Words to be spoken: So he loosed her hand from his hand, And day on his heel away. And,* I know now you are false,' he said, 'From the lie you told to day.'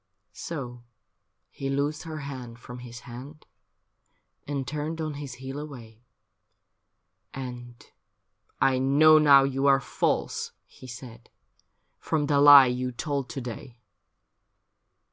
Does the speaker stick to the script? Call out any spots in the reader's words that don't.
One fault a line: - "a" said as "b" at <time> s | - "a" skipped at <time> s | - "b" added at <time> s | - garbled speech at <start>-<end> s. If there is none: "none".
- "day" said as "turned" at 4.7 s